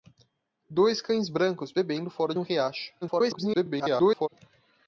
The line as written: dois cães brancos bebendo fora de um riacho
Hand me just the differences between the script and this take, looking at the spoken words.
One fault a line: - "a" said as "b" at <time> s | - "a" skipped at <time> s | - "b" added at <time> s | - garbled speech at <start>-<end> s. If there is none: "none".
- "de" skipped at 2.3 s
- garbled speech at 3.0-4.3 s